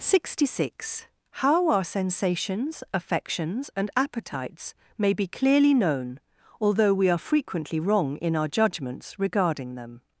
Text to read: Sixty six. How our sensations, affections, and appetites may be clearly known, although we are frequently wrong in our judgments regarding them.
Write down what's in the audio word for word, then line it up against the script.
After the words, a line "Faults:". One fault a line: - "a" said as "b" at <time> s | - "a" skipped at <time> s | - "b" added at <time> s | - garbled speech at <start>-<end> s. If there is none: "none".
Sixty six. How our sensations, affections, and appetites may be clearly known, although we are frequently wrong in our judgments regarding them.
Faults:
none